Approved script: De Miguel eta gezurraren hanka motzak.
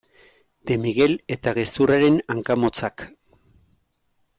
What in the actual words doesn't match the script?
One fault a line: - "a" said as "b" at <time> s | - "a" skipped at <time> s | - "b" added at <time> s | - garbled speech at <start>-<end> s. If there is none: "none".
none